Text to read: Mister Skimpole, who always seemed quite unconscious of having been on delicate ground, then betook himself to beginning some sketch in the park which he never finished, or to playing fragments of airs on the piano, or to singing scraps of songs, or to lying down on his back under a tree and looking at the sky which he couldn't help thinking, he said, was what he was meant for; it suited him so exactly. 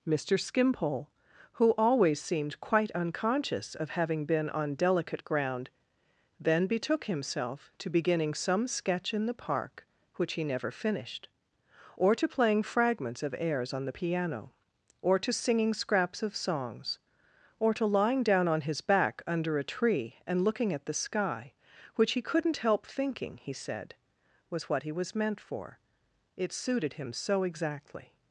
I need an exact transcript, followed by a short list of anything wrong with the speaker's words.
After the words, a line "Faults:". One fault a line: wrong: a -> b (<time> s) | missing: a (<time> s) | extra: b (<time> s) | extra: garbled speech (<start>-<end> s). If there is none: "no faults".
Mister Skimpole, who always seemed quite unconscious of having been on delicate ground, then betook himself to beginning some sketch in the park which he never finished, or to playing fragments of airs on the piano, or to singing scraps of songs, or to lying down on his back under a tree and looking at the sky which he couldn't help thinking, he said, was what he was meant for; it suited him so exactly.
Faults:
no faults